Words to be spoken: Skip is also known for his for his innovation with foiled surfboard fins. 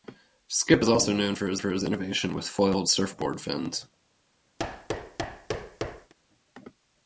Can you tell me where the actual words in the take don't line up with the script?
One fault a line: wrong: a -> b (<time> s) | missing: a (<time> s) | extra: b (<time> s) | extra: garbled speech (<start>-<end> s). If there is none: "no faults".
no faults